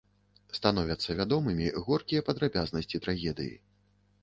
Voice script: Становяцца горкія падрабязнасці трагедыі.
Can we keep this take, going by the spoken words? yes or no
no